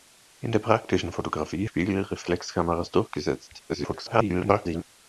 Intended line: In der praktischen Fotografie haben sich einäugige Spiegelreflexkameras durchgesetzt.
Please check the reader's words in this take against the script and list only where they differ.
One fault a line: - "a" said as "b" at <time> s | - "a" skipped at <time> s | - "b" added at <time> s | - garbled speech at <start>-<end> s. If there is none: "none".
- "haben sich einäugige" skipped at 1.7 s
- garbled speech at 3.7-4.8 s